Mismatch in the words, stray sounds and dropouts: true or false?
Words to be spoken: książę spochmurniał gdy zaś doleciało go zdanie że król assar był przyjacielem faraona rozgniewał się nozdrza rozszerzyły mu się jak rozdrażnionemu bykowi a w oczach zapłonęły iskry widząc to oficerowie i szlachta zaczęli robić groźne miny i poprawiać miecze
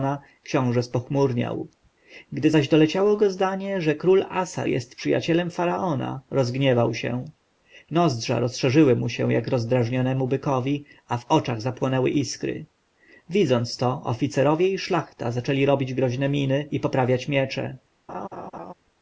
true